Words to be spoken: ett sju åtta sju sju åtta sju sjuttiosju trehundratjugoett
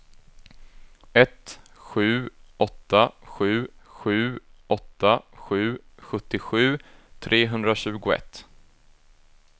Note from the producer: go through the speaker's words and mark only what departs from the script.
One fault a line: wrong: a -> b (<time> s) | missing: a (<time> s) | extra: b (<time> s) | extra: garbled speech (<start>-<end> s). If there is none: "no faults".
no faults